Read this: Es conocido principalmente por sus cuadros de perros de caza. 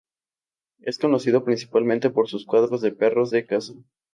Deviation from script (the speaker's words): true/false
false